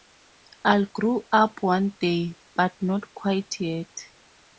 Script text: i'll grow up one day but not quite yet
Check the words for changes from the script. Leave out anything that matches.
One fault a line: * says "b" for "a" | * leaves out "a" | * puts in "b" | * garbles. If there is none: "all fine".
all fine